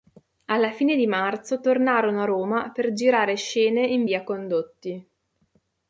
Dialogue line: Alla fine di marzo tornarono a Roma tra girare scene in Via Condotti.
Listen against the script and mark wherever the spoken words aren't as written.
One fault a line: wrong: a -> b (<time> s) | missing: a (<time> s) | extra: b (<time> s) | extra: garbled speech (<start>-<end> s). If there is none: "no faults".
wrong: tra -> per (2.7 s)